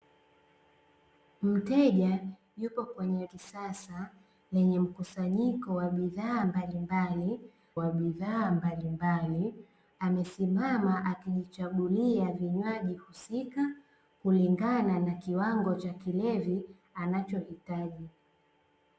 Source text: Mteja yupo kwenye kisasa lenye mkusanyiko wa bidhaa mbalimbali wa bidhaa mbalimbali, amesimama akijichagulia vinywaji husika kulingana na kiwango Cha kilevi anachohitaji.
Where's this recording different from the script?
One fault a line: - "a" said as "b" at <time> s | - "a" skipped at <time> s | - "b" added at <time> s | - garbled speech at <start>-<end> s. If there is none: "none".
none